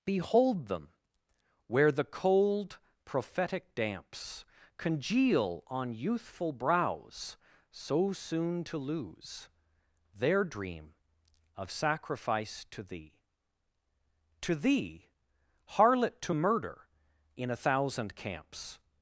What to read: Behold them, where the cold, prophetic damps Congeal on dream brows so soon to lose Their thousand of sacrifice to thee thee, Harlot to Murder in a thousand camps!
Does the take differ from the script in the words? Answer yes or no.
yes